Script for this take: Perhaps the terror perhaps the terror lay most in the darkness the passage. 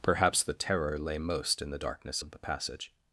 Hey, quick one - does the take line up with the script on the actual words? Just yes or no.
no